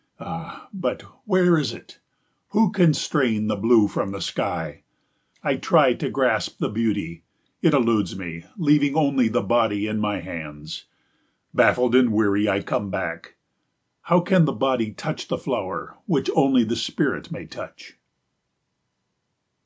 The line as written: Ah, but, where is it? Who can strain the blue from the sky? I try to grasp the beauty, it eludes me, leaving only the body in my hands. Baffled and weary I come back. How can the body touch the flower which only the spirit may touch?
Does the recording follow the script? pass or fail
pass